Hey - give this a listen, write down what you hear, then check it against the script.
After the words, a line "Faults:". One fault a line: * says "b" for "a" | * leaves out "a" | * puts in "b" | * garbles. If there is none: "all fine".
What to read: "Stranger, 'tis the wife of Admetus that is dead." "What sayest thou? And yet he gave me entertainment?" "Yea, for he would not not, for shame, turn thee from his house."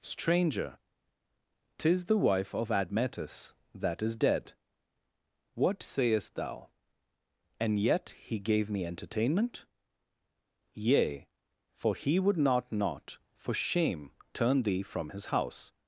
"Stranger, 'tis the wife of Admetus that is dead." "What sayest thou? And yet he gave me entertainment?" "Yea, for he would not not, for shame, turn thee from his house."
Faults:
all fine